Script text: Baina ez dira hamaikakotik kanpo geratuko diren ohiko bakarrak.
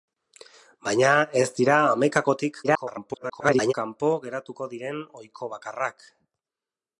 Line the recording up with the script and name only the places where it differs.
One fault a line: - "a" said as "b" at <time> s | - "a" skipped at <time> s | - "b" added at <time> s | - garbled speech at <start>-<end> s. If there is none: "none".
- garbled speech at 2.6-3.7 s